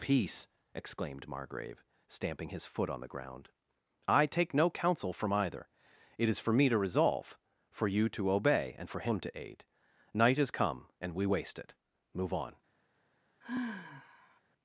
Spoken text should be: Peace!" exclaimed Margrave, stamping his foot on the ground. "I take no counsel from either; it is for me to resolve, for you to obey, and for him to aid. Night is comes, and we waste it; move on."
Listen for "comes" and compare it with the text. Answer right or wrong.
wrong